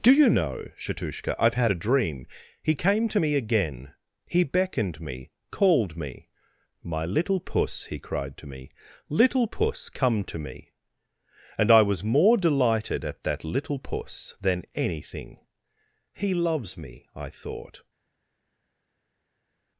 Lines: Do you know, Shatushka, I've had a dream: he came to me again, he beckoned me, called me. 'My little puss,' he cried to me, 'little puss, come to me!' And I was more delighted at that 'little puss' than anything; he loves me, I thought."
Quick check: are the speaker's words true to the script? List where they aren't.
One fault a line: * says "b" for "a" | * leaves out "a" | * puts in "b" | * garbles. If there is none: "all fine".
all fine